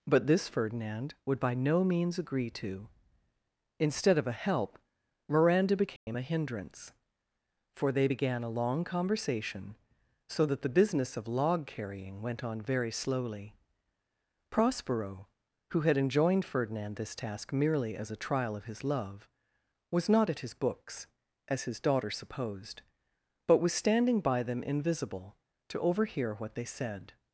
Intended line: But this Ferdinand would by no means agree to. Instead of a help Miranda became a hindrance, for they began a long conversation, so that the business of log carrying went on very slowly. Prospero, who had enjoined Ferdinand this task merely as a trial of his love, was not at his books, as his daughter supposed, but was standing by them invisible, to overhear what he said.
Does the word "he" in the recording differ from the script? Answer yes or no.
yes